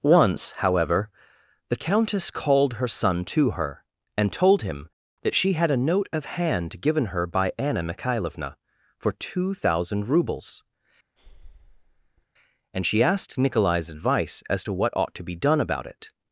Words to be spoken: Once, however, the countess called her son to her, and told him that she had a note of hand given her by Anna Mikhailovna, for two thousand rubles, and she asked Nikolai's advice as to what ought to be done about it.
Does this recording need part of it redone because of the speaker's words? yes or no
no